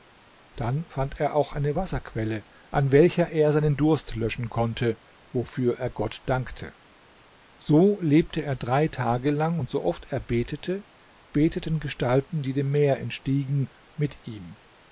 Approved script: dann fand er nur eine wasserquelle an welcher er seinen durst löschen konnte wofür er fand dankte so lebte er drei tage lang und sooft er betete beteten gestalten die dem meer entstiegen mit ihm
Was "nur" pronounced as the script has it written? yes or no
no